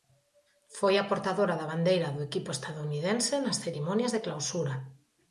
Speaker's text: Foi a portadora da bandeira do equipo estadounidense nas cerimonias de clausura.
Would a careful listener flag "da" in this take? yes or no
no